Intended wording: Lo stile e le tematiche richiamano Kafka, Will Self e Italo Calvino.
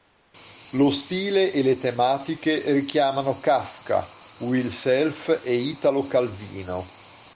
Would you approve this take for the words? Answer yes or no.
yes